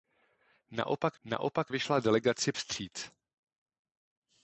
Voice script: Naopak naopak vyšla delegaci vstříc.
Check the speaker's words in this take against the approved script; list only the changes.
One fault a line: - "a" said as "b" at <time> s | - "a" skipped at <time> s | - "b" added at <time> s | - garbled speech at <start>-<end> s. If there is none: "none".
none